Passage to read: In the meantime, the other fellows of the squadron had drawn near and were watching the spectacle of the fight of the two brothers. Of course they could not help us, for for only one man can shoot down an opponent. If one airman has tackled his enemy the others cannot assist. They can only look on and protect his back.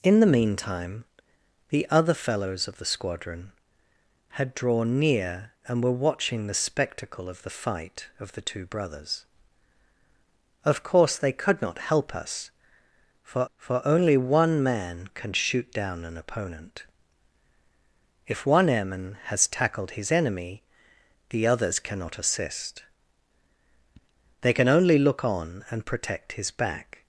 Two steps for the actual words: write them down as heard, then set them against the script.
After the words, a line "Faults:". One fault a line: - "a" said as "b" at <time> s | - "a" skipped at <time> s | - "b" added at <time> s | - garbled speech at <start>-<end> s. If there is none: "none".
In the meantime, the other fellows of the squadron had drawn near and were watching the spectacle of the fight of the two brothers. Of course they could not help us, for for only one man can shoot down an opponent. If one airman has tackled his enemy the others cannot assist. They can only look on and protect his back.
Faults:
none